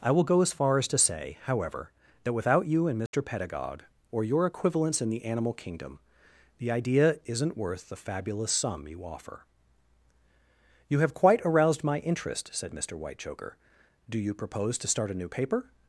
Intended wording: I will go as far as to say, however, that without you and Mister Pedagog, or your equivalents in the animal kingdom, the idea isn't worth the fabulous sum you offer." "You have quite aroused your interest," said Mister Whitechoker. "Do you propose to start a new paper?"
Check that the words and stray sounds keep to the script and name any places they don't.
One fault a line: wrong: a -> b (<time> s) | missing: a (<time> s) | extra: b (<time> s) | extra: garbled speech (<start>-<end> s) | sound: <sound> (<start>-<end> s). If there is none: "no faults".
sound: dropout (3.1-3.1 s)
wrong: your -> my (11.8 s)